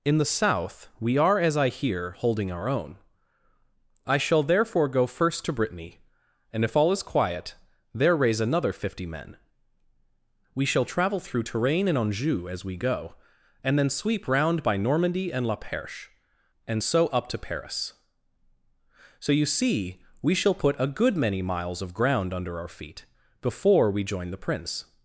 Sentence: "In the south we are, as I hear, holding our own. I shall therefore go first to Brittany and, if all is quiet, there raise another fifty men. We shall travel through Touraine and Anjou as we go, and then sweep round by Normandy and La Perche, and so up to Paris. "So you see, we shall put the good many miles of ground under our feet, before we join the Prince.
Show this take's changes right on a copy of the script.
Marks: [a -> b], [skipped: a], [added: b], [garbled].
"In the south we are, as I hear, holding our own. I shall therefore go first to Brittany and, if all is quiet, there raise another fifty men. We shall travel through Touraine and Anjou as we go, and then sweep round by Normandy and La Perche, and so up to Paris. "So you see, we shall put [the -> a] good many miles of ground under our feet, before we join the Prince.